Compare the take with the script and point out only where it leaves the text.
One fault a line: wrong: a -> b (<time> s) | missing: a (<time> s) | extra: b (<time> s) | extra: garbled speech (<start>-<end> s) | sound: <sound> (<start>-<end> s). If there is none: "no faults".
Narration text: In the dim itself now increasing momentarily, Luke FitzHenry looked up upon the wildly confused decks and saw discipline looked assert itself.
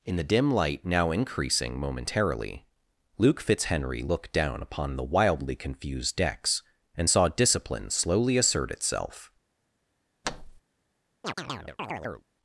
wrong: itself -> light (0.5 s)
wrong: up -> down (4.3 s)
wrong: looked -> slowly (7.9 s)
sound: thud (10.2-10.6 s)
sound: chirp (11.2-12.3 s)